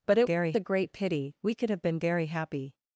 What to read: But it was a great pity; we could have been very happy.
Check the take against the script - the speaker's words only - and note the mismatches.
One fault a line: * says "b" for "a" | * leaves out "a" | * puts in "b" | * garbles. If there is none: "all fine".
* says "very" for "was"